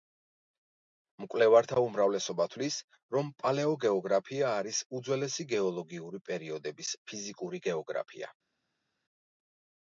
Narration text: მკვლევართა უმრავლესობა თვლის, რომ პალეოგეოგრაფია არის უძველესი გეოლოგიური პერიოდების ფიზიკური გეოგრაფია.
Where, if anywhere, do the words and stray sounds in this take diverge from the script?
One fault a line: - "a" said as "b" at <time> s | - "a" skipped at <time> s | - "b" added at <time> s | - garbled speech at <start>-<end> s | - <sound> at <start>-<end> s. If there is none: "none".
none